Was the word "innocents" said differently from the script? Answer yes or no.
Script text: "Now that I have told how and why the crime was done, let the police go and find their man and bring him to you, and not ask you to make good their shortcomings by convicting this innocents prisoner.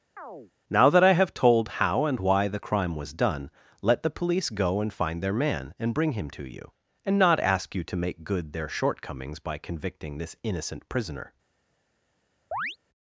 yes